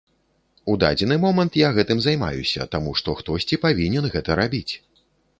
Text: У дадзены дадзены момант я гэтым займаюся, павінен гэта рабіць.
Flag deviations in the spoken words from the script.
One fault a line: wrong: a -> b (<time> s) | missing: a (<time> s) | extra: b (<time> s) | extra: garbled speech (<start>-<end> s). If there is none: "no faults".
missing: дадзены (1.2 s)
extra: таму што хтосьці (2.8 s)